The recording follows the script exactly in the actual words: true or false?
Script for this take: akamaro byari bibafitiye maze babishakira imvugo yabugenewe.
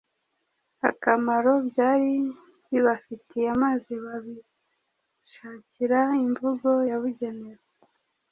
true